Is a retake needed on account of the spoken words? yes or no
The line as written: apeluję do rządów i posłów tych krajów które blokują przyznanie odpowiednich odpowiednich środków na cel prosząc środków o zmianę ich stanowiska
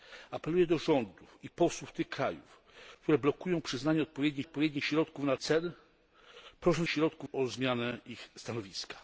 no